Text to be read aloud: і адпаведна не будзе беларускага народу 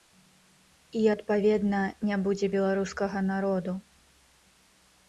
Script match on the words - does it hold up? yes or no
yes